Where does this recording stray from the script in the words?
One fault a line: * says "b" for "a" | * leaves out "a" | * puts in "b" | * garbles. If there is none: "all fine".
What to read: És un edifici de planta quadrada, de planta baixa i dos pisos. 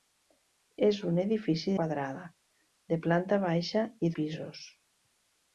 * leaves out "de planta"
* leaves out "dos"